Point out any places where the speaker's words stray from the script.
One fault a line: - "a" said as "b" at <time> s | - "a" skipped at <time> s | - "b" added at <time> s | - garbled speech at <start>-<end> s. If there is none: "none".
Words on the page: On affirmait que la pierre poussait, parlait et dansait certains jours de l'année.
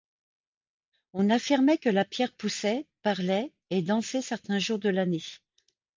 none